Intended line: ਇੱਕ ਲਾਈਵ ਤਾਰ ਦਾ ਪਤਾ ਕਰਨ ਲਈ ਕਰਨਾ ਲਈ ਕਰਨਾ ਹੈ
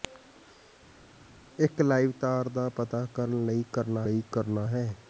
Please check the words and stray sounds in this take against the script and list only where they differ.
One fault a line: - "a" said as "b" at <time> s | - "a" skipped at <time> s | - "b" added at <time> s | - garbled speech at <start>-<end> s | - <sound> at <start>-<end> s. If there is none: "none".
none